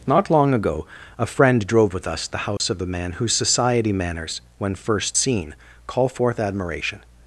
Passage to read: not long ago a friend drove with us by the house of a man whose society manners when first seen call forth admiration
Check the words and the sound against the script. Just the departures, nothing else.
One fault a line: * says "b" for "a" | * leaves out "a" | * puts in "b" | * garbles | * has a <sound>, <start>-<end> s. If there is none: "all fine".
* leaves out "by"
* has a dropout, 2.6-2.6 s